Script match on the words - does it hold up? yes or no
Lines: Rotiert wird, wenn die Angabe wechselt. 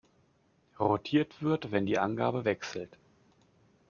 yes